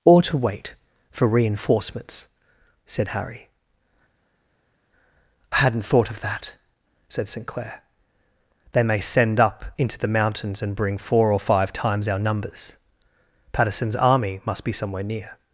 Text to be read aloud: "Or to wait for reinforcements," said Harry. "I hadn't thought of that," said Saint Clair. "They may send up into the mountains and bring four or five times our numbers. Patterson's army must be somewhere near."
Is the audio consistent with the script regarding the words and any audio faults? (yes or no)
yes